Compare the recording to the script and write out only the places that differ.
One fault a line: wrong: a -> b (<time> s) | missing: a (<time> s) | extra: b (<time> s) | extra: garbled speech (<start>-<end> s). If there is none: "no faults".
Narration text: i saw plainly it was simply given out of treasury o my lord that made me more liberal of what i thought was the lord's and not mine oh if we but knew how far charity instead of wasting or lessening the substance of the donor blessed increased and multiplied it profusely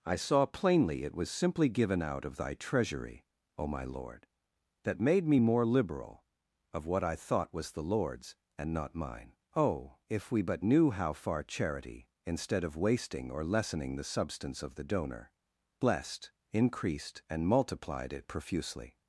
extra: thy (2.4 s)